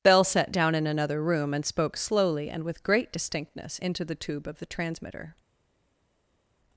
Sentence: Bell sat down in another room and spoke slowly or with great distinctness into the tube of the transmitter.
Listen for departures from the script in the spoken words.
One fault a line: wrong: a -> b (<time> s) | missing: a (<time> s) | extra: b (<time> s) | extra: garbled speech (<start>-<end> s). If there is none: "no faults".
wrong: or -> and (2.5 s)